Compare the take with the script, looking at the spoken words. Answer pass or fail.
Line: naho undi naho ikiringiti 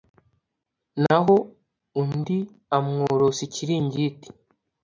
fail